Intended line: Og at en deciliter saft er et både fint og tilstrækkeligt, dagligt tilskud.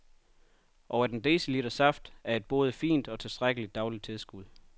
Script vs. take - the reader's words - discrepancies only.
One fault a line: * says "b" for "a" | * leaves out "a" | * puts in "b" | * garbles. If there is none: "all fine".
all fine